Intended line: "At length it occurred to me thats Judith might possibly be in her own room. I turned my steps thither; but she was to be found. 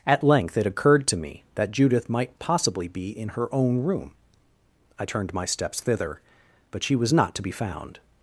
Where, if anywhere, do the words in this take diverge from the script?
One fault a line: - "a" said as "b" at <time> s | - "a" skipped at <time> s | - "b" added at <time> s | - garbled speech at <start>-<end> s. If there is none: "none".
- "thats" said as "that" at 1.5 s
- "not" added at 7.1 s